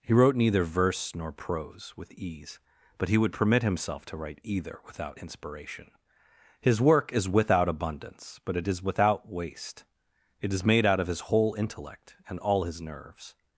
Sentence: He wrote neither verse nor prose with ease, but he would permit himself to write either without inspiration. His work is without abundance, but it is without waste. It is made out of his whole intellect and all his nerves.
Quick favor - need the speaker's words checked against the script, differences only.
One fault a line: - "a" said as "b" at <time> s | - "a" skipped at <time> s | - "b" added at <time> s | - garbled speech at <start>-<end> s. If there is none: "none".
none